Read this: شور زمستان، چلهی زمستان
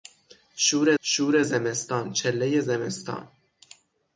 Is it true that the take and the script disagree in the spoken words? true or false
true